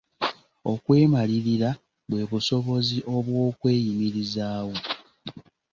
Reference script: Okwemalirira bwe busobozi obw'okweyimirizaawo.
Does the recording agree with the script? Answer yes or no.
yes